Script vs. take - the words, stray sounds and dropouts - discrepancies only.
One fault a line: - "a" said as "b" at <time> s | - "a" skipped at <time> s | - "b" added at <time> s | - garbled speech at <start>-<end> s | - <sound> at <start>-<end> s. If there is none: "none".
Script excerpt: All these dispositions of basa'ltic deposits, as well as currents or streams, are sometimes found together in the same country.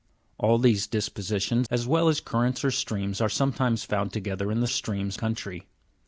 - "of basa'ltic deposits" skipped at 1.7 s
- "same" said as "streams" at 4.7 s